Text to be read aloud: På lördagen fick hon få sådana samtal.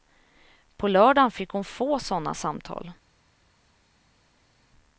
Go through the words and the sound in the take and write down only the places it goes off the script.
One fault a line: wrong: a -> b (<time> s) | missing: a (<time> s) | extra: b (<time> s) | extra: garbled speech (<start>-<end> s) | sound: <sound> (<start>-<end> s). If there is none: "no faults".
no faults